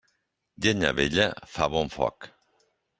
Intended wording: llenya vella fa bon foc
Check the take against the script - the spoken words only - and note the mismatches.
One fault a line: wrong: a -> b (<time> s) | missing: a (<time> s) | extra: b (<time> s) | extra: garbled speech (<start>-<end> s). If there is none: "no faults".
no faults